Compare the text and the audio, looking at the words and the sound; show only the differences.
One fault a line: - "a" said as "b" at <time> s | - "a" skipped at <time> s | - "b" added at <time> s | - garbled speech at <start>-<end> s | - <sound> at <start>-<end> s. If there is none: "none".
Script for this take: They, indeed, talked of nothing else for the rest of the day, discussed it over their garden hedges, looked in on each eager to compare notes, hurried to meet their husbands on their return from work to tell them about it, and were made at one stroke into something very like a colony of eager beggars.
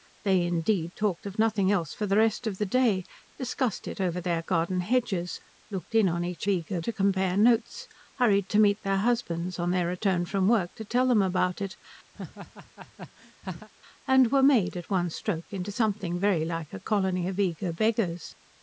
- laugh at 12.1-13.7 s